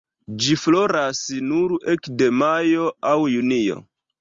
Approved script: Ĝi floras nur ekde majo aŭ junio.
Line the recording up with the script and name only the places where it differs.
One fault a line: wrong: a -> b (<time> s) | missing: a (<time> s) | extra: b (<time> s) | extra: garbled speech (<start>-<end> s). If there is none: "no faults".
no faults